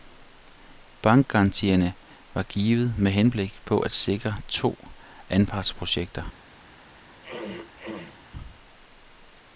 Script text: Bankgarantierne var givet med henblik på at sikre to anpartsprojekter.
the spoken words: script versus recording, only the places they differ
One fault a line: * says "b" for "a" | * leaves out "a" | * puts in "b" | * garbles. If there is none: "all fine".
all fine